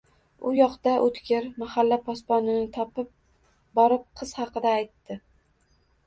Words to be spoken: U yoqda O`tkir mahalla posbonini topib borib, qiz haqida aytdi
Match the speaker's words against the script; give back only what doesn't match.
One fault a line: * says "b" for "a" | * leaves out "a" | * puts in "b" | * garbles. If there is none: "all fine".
all fine